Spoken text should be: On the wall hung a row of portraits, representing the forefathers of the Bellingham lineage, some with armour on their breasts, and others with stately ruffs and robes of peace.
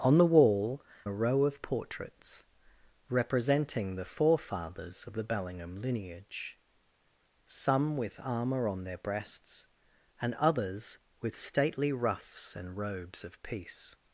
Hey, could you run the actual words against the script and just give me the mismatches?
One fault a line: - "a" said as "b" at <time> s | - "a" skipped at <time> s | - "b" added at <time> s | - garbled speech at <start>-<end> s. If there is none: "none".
- "hung" skipped at 0.8 s